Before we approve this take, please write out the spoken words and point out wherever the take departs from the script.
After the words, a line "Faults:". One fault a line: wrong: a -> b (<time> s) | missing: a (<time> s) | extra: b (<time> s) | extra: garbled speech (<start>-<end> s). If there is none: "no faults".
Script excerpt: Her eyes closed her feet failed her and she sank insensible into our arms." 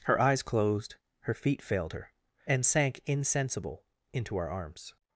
Her eyes closed her feet failed her and sank insensible into our arms."
Faults:
missing: she (2.6 s)